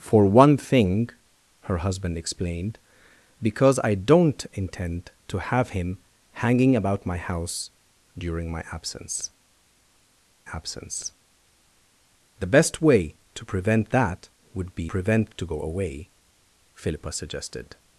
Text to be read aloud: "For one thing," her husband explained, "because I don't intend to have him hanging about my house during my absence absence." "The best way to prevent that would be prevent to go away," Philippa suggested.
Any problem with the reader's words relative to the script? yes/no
no